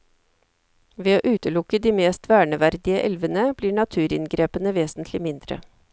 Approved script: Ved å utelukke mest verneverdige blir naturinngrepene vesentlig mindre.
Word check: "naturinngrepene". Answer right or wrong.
right